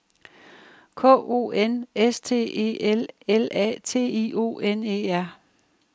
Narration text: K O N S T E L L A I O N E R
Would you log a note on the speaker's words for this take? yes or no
yes